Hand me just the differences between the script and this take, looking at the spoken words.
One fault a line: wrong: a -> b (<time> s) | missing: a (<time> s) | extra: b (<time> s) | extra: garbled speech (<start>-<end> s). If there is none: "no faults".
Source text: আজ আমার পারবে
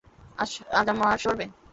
no faults